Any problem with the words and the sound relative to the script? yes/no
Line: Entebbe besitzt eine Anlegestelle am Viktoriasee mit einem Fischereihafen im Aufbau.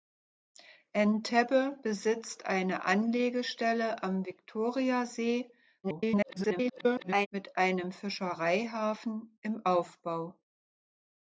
yes